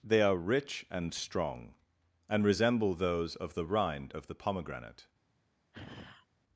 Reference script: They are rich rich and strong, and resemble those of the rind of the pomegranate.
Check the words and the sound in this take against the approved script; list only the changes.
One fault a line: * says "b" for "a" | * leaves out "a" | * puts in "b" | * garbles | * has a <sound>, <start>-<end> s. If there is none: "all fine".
* leaves out "rich"
* has a sigh, 5.7-6.3 s